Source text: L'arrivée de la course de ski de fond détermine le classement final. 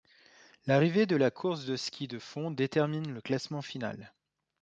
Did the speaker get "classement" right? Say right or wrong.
right